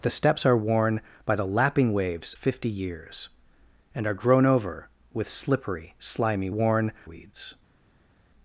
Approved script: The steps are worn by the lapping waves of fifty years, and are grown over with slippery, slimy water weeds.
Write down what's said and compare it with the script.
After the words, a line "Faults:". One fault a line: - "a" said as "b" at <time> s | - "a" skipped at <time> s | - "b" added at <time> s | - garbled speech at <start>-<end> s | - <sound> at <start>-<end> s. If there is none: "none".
The steps are worn by the lapping waves fifty years, and are grown over with slippery, slimy worn weeds.
Faults:
- "of" skipped at 2.3 s
- "water" said as "worn" at 6.5 s